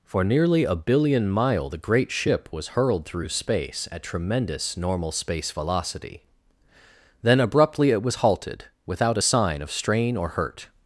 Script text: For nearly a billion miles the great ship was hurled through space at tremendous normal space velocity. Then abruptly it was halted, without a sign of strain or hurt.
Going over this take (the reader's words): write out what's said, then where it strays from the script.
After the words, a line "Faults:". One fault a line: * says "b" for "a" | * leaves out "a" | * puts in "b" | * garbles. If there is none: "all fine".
For nearly a billion mile the great ship was hurled through space at tremendous normal space velocity. Then abruptly it was halted, without a sign of strain or hurt.
Faults:
* says "mile" for "miles"